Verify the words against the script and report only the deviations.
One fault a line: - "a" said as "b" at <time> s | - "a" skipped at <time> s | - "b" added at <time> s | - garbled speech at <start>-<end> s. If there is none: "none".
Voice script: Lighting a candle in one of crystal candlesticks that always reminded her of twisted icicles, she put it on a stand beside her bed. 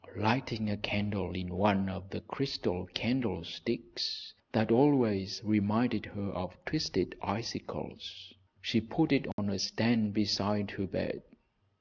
- "the" added at 2.1 s